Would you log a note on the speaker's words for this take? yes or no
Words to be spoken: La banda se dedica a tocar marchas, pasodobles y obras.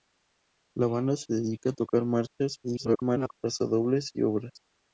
yes